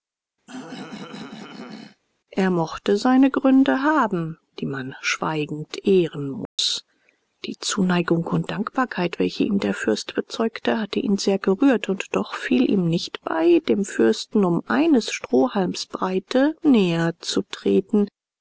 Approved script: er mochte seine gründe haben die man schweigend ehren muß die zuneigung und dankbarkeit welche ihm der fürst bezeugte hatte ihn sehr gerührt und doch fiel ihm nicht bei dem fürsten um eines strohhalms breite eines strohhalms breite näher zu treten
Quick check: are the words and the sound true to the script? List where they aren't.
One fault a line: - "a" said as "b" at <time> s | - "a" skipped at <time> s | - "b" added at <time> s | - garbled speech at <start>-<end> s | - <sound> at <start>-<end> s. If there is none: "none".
- throat clearing at 0.5-2.0 s
- dropout at 6.5-6.6 s
- "eines strohhalms breite" skipped at 16.5 s